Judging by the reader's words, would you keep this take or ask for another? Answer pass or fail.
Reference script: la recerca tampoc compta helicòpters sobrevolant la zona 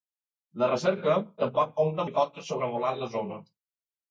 pass